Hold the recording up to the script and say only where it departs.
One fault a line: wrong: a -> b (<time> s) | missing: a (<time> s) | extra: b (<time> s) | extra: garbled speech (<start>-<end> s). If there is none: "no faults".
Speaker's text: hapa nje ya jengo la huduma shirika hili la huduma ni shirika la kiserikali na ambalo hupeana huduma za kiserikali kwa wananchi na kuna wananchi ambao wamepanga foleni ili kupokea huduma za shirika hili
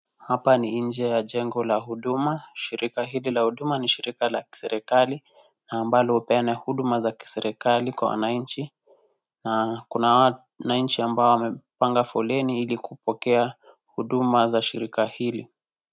extra: ni (0.6 s)